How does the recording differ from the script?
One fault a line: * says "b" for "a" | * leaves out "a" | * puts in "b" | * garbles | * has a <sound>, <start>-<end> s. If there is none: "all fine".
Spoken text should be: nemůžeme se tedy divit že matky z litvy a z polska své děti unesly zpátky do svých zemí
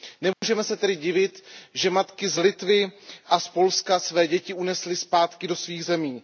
* has a dropout, 0.3-0.4 s